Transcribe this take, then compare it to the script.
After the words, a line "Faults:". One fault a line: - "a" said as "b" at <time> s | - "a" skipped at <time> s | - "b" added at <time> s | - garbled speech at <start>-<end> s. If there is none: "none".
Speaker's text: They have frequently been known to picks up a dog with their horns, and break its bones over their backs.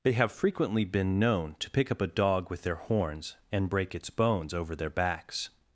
They have frequently been known to pick up a dog with their horns, and break its bones over their backs.
Faults:
- "picks" said as "pick" at 1.7 s